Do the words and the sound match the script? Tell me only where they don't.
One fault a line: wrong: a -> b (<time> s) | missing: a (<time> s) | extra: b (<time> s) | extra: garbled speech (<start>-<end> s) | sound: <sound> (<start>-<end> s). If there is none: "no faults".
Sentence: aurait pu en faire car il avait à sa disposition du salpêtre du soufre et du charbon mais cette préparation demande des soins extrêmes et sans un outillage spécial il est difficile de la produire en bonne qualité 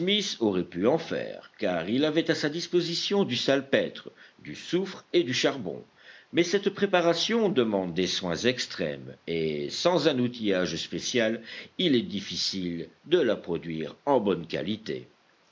no faults